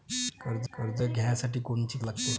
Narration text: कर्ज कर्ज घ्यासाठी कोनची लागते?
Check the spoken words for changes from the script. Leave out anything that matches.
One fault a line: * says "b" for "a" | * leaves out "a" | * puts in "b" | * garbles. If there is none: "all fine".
all fine